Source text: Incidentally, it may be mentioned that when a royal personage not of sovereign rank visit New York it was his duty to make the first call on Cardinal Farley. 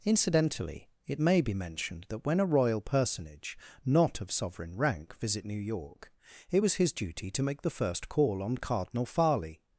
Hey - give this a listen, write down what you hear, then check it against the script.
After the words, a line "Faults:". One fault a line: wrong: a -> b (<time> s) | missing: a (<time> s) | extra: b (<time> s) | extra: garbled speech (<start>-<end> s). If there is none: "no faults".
Incidentally, it may be mentioned that when a royal personage not of sovereign rank visit New York it was his duty to make the first call on Cardinal Farley.
Faults:
no faults